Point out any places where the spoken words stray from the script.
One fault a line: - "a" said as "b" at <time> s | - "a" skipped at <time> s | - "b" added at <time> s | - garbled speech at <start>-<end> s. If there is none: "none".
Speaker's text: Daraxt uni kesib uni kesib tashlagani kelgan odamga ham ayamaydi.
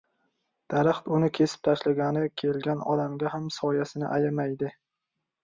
- "uni kesib" skipped at 1.6 s
- "soyasini" added at 3.6 s